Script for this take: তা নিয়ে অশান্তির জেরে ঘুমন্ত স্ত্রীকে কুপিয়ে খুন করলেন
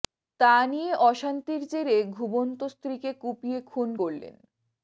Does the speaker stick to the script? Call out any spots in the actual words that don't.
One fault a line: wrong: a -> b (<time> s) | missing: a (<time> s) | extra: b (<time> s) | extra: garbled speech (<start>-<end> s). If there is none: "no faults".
no faults